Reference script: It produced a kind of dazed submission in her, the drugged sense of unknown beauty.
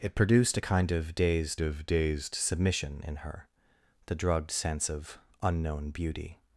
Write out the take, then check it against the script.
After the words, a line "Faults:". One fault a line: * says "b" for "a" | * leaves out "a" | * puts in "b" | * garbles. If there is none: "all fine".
It produced a kind of dazed of dazed submission in her, the drugged sense of unknown beauty.
Faults:
* puts in "of dazed"